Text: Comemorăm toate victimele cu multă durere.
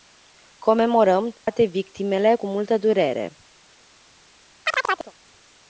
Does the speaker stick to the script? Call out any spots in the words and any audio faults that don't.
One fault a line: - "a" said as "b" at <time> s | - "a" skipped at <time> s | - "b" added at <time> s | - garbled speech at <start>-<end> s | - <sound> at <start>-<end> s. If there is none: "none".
- dropout at 1.4-1.5 s
- chirp at 4.6-5.1 s